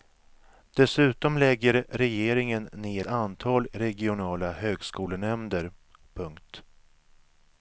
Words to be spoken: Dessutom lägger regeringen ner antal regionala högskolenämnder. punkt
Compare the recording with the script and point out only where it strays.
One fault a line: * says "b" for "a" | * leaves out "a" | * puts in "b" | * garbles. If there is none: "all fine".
all fine